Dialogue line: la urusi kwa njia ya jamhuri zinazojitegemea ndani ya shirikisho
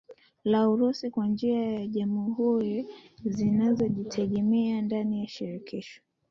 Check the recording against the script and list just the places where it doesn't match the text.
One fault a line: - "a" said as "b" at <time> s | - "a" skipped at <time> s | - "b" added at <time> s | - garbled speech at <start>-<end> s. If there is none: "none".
none